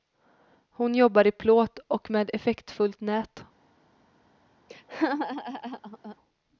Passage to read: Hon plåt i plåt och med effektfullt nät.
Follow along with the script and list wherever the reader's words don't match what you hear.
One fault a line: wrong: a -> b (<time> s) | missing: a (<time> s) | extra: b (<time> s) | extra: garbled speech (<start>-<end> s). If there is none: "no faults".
wrong: plåt -> jobbar (0.9 s)